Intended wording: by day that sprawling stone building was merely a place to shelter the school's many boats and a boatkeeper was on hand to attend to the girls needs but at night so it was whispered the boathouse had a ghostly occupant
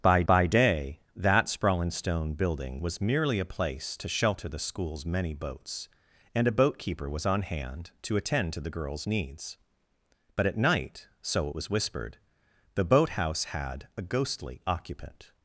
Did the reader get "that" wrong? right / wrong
right